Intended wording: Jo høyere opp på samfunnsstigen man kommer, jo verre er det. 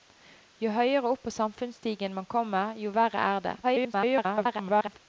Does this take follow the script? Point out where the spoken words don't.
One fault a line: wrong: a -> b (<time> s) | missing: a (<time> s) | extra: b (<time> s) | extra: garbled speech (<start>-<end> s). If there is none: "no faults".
extra: garbled speech (3.6-5.0 s)